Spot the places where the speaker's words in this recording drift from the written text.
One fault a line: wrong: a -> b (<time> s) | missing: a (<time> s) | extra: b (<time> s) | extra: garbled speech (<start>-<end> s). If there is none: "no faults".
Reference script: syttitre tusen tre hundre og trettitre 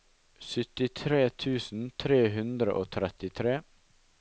no faults